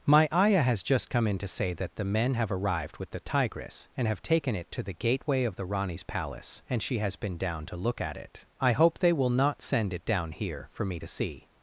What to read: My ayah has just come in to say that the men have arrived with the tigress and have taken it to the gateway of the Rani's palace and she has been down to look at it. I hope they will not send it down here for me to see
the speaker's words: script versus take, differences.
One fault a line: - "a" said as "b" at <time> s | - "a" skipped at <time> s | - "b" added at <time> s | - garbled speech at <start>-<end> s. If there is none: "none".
none